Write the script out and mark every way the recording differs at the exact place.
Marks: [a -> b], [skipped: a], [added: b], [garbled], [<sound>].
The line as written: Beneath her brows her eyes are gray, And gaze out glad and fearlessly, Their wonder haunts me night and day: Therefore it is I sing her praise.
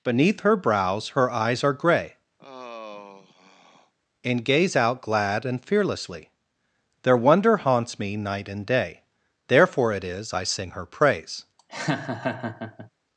Beneath her brows her eyes are gray, [sigh] And gaze out glad and fearlessly, Their wonder haunts me night and day: Therefore it is I sing her praise. [laugh]